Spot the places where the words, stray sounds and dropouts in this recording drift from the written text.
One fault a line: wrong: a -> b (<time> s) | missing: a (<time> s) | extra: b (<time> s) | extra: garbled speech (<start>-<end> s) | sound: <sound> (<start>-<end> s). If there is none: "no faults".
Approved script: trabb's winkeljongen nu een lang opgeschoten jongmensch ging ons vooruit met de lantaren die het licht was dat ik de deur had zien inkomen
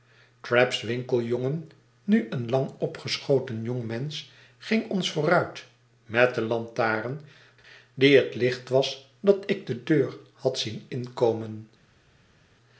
no faults